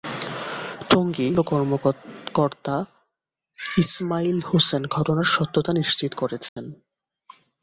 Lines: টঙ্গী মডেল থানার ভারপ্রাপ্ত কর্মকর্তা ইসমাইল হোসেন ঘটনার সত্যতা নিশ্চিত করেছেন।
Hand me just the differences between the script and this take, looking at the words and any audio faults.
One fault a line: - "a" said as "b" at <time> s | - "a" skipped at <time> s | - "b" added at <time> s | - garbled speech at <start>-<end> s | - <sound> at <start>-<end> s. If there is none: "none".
- "মডেল থানার ভারপ্রাপ্ত" skipped at 1.3 s
- dropout at 6.5-6.6 s